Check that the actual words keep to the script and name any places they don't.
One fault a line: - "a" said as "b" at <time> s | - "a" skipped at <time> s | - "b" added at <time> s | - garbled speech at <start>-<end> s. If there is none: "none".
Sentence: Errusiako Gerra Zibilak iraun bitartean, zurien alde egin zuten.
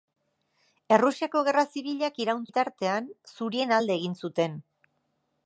none